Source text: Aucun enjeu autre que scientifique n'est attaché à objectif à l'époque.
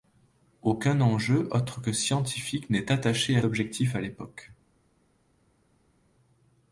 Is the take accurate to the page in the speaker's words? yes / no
yes